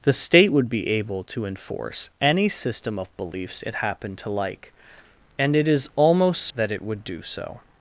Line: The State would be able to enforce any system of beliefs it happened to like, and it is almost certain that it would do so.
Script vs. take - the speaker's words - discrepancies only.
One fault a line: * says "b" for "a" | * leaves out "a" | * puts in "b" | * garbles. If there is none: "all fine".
* leaves out "certain"